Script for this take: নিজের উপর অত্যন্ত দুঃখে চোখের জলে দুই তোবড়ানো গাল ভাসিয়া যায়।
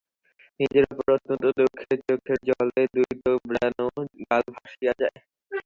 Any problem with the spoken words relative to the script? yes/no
no